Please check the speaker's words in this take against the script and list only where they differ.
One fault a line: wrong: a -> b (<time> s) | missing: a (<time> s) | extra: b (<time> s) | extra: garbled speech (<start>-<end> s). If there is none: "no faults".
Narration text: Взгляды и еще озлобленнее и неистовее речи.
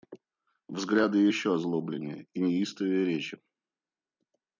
no faults